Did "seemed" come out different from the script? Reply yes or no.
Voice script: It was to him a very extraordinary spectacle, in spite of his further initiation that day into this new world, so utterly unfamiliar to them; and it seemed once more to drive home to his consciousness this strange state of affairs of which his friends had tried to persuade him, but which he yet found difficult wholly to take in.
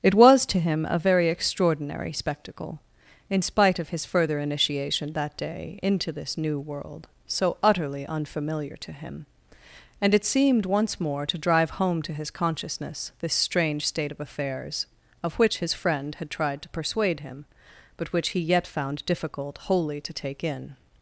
no